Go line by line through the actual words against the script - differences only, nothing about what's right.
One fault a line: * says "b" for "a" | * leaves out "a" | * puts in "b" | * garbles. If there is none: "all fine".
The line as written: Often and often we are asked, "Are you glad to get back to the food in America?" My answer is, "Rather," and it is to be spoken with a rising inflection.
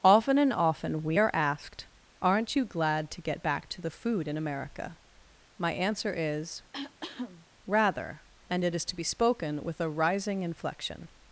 * says "Aren't" for "Are"